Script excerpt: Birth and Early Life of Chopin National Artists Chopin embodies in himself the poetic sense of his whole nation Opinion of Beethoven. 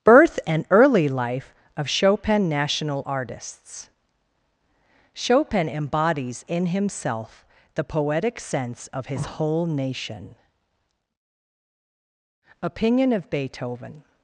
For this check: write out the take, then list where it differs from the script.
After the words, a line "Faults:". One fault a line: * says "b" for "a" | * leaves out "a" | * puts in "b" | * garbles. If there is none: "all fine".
Birth and Early Life of Chopin National Artists Chopin embodies in himself the poetic sense of his whole nation Opinion of Beethoven.
Faults:
all fine